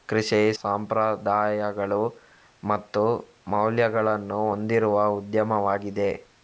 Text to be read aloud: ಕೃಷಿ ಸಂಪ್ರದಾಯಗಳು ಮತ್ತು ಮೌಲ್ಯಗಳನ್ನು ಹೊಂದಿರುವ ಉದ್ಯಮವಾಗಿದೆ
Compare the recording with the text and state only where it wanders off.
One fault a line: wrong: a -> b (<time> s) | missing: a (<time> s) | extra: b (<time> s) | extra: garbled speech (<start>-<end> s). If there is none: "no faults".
no faults